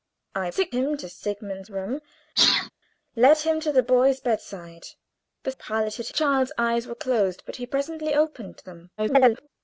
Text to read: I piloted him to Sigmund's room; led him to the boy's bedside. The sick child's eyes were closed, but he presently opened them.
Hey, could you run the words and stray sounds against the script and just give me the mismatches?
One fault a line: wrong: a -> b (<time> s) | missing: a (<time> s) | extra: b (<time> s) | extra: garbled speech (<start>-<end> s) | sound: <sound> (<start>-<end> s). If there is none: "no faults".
wrong: piloted -> sick (0.5 s)
sound: sneeze (2.4-2.7 s)
wrong: sick -> piloted (5.5 s)
extra: garbled speech (9.0-9.5 s)